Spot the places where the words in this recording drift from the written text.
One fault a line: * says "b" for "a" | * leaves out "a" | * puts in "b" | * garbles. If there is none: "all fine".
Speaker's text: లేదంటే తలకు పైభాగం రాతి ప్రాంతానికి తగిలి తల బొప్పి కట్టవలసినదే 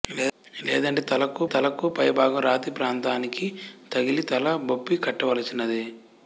* puts in "తలకు"